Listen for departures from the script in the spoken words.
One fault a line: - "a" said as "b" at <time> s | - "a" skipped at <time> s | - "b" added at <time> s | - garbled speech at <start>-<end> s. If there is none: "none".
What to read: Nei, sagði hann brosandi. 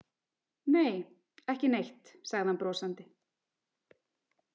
- "ekki neitt" added at 1.5 s